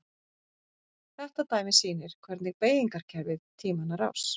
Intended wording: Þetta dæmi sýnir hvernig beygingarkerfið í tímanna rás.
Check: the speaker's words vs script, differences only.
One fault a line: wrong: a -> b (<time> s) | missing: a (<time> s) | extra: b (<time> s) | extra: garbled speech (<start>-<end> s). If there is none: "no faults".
no faults